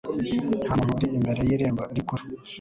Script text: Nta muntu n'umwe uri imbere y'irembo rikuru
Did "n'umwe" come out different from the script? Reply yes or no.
yes